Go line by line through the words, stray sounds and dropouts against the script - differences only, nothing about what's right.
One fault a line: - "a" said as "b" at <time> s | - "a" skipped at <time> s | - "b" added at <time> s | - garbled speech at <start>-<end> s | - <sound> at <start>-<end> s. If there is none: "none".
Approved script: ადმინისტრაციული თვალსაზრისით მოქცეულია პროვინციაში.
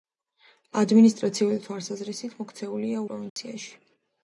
- dropout at 3.3-3.4 s